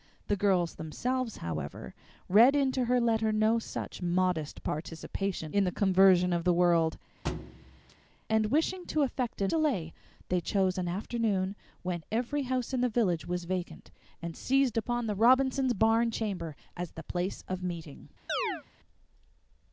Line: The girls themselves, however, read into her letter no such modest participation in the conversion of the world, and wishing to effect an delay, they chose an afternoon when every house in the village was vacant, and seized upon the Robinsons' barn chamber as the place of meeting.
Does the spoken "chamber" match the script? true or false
true